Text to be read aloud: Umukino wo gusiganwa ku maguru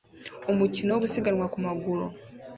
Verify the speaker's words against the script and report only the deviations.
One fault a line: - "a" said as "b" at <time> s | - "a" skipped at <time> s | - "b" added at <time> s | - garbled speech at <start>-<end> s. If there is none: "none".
none